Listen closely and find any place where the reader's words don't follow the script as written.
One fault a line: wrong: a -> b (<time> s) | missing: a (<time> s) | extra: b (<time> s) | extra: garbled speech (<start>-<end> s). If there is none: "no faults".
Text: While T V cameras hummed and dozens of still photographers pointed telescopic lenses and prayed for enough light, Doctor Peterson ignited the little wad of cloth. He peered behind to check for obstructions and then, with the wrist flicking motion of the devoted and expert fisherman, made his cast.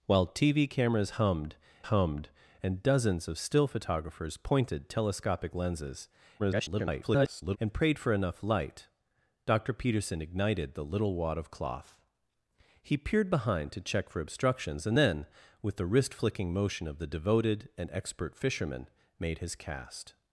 extra: hummed (1.8 s)
extra: garbled speech (6.4-7.6 s)